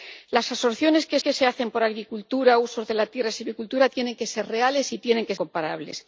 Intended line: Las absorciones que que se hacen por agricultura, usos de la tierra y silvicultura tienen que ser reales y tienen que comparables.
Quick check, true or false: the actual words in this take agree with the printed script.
true